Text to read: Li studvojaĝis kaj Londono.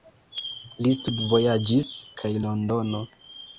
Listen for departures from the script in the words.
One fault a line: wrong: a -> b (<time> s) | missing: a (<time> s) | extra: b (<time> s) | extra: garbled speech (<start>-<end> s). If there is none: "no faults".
no faults